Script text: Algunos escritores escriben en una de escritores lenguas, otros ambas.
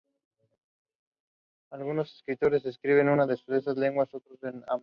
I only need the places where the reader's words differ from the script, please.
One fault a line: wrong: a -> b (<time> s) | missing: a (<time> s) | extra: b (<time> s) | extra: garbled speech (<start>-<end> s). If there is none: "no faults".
wrong: escritores -> esas (3.3 s)
extra: en (4.4 s)